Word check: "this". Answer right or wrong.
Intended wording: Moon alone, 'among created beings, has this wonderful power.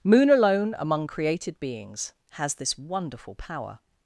right